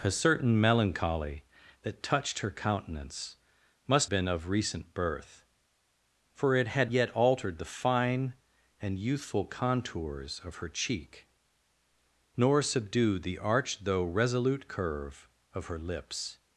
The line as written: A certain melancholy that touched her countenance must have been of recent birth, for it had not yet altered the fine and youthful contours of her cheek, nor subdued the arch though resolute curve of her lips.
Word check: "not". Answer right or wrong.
wrong